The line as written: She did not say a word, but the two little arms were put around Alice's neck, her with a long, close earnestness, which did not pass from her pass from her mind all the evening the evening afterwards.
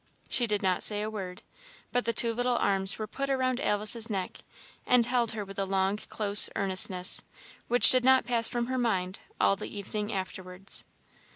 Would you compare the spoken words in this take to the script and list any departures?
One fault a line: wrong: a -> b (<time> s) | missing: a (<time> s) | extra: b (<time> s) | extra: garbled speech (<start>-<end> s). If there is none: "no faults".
extra: and held (4.8 s)
missing: pass from her (8.8 s)
missing: the evening (10.1 s)